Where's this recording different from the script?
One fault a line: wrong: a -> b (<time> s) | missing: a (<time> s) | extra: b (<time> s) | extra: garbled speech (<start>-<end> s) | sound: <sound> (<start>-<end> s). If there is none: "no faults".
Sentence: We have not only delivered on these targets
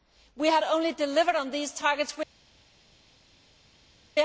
missing: not (0.6 s)